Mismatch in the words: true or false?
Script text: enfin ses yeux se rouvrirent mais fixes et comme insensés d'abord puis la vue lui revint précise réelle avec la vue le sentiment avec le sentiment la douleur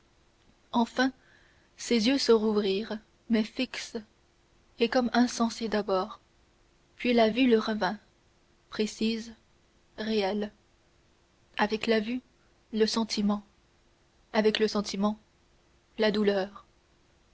false